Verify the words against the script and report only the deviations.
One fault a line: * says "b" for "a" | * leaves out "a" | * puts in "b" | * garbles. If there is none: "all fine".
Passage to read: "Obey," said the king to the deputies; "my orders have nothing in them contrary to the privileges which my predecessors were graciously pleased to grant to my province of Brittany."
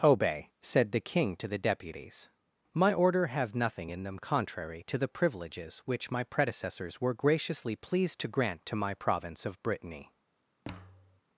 * says "order" for "orders"